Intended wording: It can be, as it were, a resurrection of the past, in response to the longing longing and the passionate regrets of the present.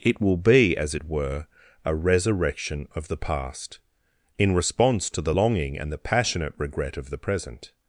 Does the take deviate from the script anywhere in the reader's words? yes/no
yes